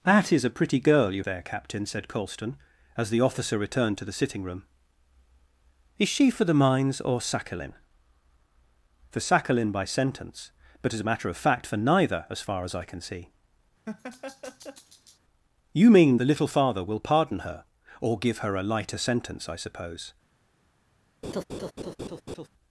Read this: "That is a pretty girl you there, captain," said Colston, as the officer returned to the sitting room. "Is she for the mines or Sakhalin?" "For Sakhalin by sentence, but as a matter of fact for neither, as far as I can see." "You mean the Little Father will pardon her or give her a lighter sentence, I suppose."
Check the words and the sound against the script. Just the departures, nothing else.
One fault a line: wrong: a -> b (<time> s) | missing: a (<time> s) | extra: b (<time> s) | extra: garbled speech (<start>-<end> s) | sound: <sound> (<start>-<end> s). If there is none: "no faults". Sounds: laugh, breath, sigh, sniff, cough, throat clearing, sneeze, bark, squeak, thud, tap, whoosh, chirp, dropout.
sound: laugh (13.9-15.2 s)
sound: laugh (21.2-22.5 s)